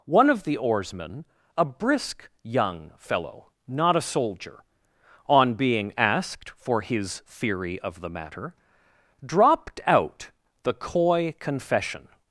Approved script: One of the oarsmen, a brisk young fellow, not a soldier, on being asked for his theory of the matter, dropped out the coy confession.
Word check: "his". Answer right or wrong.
right